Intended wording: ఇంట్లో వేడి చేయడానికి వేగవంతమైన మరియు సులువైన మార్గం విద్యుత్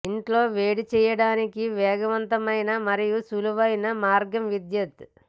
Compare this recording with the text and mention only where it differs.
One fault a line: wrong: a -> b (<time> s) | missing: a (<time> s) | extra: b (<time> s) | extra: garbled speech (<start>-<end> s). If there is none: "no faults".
no faults